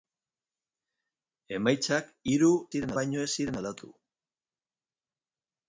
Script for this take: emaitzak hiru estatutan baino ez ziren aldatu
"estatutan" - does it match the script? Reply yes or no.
no